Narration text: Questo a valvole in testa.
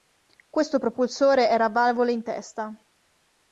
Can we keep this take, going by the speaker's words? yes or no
no